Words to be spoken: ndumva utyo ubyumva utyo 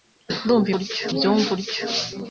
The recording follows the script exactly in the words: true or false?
true